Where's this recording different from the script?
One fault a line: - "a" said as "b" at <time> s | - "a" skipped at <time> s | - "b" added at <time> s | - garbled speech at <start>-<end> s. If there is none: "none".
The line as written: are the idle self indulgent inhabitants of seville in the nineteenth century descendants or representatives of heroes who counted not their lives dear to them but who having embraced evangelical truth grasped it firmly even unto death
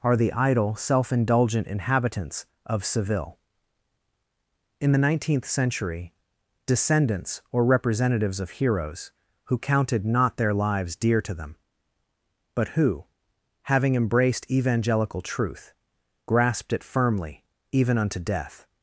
none